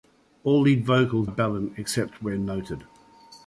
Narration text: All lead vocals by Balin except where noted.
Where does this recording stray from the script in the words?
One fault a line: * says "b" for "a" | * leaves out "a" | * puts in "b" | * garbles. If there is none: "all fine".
* leaves out "by"